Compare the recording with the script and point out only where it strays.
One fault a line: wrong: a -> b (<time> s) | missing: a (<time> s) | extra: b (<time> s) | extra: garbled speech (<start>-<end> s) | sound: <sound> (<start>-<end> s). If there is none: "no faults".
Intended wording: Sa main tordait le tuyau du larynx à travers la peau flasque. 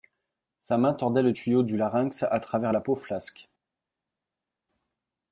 no faults